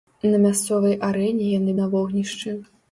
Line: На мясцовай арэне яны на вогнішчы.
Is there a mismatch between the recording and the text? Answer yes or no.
no